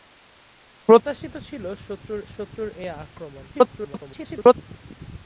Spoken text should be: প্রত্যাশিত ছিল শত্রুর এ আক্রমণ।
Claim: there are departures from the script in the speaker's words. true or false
true